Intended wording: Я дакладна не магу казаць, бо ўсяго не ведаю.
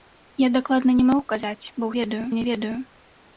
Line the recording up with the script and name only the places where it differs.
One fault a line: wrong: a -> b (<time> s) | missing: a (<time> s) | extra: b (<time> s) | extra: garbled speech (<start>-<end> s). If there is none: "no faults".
wrong: ўсяго -> ведаю (2.0 s)